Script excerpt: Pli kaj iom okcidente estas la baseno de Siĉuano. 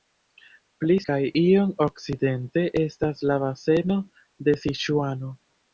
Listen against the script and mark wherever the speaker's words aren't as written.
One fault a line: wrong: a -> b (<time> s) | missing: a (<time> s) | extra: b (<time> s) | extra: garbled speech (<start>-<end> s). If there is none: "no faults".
no faults